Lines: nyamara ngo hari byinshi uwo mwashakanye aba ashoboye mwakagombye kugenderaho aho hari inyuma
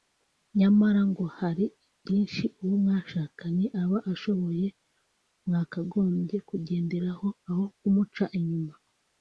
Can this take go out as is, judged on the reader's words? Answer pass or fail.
fail